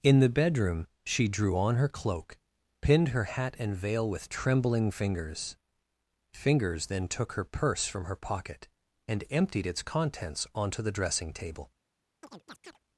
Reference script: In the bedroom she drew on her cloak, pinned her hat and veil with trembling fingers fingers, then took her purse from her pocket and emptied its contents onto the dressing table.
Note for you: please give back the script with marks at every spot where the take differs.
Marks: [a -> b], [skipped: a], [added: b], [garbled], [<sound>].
In the bedroom she drew on her cloak, pinned her hat and veil with trembling fingers fingers, then took her purse from her pocket and emptied its contents onto the dressing table. [chirp]